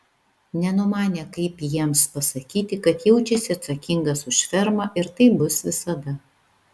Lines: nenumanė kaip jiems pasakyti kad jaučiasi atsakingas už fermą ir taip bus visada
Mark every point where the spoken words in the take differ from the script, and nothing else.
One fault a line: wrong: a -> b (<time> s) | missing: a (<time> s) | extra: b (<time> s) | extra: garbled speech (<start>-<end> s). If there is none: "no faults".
no faults